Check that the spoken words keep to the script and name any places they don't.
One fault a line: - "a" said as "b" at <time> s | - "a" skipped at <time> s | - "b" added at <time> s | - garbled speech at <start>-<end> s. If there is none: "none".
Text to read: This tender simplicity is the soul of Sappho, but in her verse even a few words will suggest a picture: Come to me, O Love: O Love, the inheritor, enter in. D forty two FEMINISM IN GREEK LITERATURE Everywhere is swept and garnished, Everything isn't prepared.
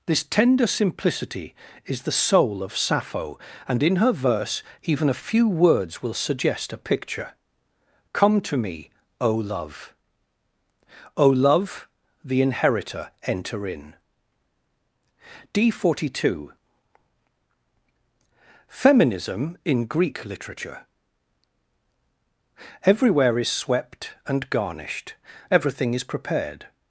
- "but" said as "and" at 3.7 s
- "isn't" said as "is" at 25.9 s